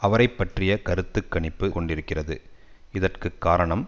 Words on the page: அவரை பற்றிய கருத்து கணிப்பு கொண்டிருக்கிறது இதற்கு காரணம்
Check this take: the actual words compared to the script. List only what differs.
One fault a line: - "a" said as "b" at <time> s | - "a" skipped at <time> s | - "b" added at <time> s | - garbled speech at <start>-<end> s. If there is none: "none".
none